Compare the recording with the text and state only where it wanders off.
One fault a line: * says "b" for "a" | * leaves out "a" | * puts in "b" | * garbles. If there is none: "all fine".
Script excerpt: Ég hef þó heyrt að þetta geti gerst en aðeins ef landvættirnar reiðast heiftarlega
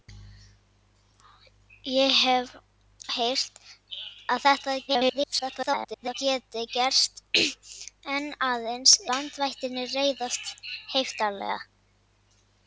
* leaves out "þó"
* garbles
* leaves out "ef"